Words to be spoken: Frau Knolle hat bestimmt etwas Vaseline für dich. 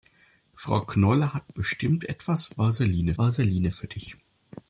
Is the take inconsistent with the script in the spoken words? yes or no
yes